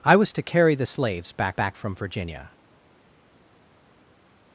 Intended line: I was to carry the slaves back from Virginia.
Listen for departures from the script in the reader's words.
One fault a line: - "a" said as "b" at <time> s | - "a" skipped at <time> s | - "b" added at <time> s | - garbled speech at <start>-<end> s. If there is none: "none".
- "back" added at 1.5 s